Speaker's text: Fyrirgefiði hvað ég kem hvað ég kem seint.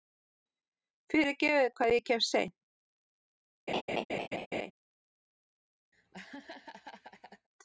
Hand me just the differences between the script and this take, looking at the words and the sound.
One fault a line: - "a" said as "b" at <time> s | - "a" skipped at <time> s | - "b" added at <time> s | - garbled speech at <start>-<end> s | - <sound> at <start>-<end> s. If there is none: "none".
- "hvað ég kem" skipped at 2.2 s
- laugh at 3.7-4.7 s
- laugh at 5.9-7.5 s